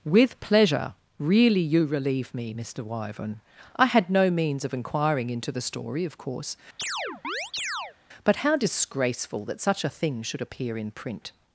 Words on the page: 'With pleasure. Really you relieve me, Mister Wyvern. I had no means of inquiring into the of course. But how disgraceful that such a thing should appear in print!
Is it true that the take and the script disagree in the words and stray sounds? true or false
true